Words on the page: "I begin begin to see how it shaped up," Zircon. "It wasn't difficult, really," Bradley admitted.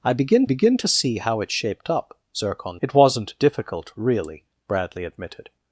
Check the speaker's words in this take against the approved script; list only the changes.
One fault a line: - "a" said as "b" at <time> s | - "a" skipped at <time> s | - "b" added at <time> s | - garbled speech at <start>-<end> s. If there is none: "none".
none